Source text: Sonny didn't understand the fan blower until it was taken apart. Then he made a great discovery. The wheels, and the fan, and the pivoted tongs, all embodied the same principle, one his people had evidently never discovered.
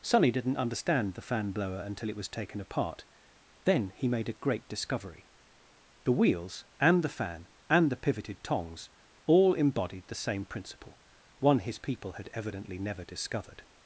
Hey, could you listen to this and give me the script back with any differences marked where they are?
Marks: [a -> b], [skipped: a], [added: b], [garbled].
Sonny didn't understand the fan blower until it was taken apart. Then he made a great discovery. The wheels, and the fan, and the pivoted tongs, all embodied the same principle, one his people had evidently never discovered.